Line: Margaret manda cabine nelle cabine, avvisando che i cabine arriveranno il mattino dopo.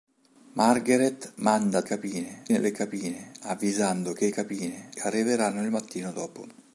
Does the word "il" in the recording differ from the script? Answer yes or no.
no